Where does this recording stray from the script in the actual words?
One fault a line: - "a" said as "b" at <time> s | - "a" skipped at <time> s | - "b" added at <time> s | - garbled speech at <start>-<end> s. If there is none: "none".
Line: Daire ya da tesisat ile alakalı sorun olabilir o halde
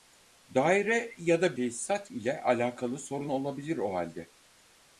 none